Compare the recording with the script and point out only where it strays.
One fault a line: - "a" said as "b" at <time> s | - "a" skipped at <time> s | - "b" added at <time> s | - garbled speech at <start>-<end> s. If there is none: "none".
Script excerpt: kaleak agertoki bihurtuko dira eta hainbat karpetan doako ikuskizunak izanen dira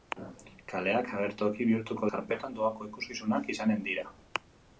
- "dira eta hainbat" skipped at 2.1 s